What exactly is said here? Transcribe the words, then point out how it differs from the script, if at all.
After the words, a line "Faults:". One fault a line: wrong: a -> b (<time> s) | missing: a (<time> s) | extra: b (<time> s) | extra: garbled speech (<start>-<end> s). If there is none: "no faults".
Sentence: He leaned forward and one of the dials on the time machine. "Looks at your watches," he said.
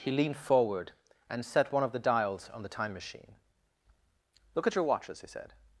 He leaned forward and set one of the dials on the time machine. "Look at your watches," he said.
Faults:
extra: set (1.4 s)
wrong: Looks -> Look (4.5 s)